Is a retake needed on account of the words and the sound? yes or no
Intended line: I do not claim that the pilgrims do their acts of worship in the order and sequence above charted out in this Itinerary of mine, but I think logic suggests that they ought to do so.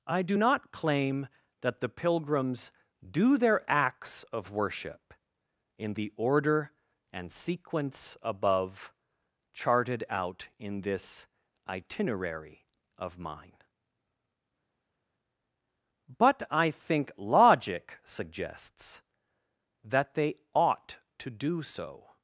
no